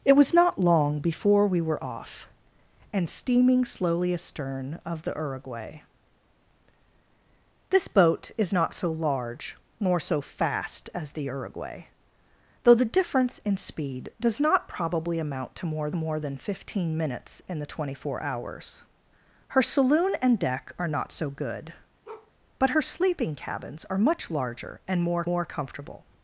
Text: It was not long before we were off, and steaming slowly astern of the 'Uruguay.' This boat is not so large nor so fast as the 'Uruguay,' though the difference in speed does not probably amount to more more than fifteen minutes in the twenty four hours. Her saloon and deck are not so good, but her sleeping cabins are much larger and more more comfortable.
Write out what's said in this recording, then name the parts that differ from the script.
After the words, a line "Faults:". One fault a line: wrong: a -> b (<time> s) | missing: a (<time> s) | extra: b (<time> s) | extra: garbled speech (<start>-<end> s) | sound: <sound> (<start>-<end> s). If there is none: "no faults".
It was not long before we were off, and steaming slowly astern of the 'Uruguay.' This boat is not so large nor so fast as the 'Uruguay,' though the difference in speed does not probably amount to more more than fifteen minutes in the twenty four hours. Her saloon and deck are not so good, but her sleeping cabins are much larger and more more comfortable.
Faults:
sound: bark (22.0-22.3 s)